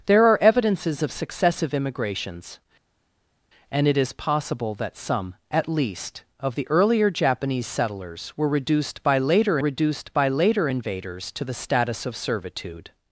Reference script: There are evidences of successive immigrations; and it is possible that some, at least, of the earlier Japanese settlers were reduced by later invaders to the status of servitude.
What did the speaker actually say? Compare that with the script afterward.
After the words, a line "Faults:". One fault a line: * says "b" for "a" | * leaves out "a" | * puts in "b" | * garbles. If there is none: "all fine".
There are evidences of successive immigrations; and it is possible that some, at least, of the earlier Japanese settlers were reduced by later reduced by later invaders to the status of servitude.
Faults:
* puts in "reduced by later"